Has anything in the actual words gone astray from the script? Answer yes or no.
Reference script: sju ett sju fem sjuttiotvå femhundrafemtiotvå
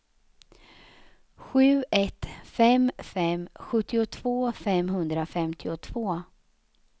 yes